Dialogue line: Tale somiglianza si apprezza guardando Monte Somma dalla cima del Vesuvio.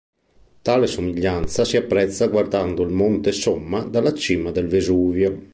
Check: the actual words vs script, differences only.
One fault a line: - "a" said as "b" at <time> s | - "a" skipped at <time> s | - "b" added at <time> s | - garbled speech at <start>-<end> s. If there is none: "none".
- "il" added at 2.8 s